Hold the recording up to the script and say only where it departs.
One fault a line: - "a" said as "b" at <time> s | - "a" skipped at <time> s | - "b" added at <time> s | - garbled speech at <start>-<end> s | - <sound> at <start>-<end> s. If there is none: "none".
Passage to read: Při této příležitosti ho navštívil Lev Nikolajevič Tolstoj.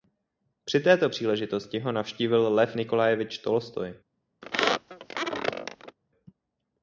- squeak at 4.4-6.0 s